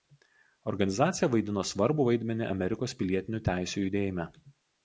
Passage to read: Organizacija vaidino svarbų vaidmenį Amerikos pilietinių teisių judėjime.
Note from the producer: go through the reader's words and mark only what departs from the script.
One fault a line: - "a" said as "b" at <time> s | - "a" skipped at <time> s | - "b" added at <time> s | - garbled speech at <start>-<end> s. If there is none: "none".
none